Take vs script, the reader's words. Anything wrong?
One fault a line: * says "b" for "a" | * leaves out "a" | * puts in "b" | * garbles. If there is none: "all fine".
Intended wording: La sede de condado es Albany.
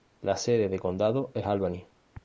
all fine